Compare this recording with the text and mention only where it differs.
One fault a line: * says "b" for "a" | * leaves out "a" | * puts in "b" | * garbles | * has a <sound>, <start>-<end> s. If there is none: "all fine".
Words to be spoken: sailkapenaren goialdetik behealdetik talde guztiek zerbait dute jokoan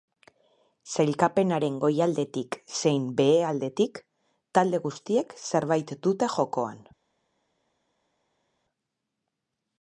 * puts in "zein"